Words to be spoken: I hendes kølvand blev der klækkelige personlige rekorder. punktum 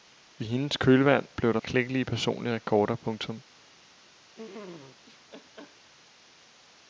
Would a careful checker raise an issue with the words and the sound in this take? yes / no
yes